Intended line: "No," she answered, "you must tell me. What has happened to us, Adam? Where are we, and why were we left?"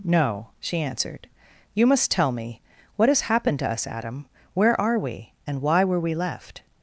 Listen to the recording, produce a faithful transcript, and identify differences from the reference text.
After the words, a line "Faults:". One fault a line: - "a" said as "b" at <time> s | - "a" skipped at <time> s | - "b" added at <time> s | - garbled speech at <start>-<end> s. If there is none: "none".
"No," she answered, "you must tell me. What has happened to us, Adam? Where are we, and why were we left?"
Faults:
none